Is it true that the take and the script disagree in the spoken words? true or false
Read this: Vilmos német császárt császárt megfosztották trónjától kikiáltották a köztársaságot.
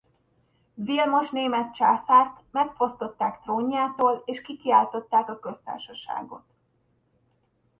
true